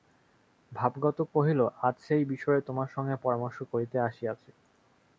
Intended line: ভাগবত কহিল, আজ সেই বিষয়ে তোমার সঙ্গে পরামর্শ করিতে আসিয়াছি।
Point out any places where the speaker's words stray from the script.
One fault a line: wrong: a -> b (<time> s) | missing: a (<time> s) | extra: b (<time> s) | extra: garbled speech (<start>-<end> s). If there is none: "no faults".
no faults